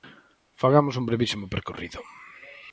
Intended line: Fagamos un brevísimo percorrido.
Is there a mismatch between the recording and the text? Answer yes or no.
no